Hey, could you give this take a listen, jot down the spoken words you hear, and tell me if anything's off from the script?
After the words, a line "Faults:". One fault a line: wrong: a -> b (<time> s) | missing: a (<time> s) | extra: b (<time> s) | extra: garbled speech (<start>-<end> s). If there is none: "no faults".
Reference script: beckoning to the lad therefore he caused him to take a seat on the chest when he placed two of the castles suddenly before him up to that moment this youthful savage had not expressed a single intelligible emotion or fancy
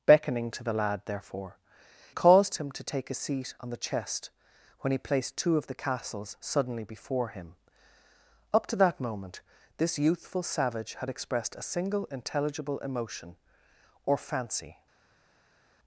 beckoning to the lad therefore caused him to take a seat on the chest when he placed two of the castles suddenly before him up to that moment this youthful savage had expressed a single intelligible emotion or fancy
Faults:
missing: he (1.6 s)
missing: not (11.1 s)